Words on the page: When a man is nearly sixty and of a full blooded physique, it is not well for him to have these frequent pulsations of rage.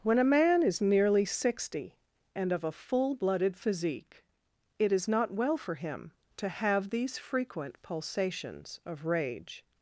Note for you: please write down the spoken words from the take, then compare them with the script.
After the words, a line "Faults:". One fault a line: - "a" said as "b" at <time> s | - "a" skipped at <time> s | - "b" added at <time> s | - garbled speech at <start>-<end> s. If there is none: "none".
When a man is nearly sixty and of a full blooded physique, it is not well for him to have these frequent pulsations of rage.
Faults:
none